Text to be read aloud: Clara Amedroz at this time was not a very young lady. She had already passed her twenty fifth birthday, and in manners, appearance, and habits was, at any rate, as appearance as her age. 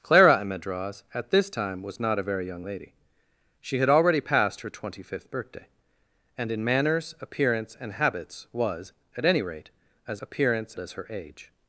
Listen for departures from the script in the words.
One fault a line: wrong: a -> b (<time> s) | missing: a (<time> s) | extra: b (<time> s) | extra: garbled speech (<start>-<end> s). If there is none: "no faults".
no faults